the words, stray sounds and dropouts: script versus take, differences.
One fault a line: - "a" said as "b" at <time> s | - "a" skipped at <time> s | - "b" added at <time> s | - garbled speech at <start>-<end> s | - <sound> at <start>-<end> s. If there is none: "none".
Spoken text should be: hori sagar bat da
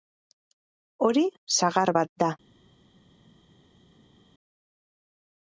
none